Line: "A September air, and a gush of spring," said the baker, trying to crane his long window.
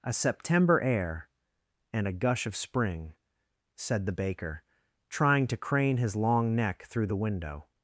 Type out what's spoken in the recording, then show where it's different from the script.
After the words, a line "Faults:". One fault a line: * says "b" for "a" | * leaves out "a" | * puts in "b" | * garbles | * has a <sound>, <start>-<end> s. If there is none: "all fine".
"A September air, and a gush of spring," said the baker, trying to crane his long neck through the window.
Faults:
* puts in "neck through the"